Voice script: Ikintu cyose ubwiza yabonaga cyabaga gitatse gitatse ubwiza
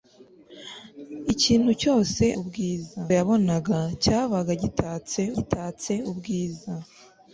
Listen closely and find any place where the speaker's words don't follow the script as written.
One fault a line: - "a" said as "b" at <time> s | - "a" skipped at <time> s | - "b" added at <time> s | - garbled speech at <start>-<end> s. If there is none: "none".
none